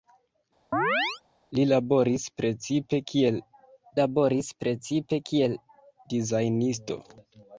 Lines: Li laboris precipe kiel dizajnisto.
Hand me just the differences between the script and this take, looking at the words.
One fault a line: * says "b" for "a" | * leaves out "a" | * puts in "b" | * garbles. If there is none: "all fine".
* puts in "laboris precipe kiel"